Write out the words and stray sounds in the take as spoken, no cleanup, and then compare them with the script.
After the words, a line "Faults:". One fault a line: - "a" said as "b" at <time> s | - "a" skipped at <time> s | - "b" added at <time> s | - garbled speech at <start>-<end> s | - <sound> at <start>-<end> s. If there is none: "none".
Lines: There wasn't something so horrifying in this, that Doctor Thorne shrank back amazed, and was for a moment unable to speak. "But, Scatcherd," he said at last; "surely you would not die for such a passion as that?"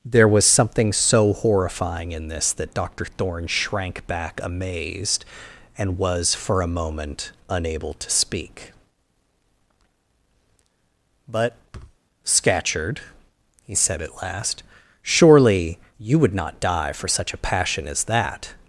There was something so horrifying in this, that Doctor Thorne shrank back amazed, and was for a moment unable to speak. "But, Scatcherd," he said at last; "surely you would not die for such a passion as that?"
Faults:
- "wasn't" said as "was" at 0.3 s
- thud at 11.7-12.0 s